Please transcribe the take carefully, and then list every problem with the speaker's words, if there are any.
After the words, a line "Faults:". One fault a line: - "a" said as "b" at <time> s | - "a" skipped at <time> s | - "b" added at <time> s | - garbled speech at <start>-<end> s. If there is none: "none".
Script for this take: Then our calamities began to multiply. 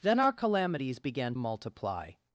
Then our calamities began multiply.
Faults:
- "to" skipped at 1.4 s